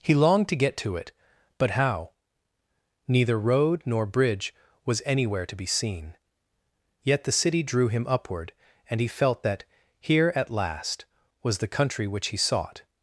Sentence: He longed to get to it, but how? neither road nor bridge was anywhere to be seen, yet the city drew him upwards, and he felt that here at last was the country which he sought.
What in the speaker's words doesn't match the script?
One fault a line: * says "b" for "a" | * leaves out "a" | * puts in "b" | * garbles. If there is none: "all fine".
* says "upward" for "upwards"